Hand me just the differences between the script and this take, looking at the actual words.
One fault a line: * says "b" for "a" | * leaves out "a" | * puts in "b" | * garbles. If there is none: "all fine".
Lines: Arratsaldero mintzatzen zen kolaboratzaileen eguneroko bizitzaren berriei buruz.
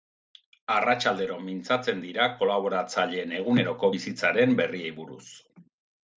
* says "dira" for "zen"